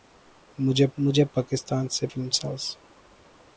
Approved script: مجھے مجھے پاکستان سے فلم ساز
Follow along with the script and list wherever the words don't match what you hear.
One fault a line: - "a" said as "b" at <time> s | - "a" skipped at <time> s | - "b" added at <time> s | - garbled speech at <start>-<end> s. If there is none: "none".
none